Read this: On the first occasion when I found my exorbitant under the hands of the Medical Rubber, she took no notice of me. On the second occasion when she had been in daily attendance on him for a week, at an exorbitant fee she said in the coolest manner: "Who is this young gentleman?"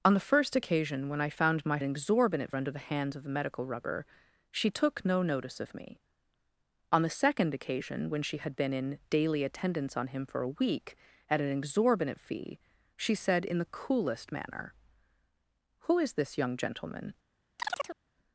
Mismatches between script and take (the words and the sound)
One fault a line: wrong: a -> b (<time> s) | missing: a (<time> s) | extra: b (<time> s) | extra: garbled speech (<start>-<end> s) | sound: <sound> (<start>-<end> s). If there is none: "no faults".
sound: chirp (17.6-18.0 s)